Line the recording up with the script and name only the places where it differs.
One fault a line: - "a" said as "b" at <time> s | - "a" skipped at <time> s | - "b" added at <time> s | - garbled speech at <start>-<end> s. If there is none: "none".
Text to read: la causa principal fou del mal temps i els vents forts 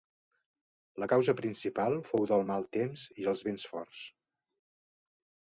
none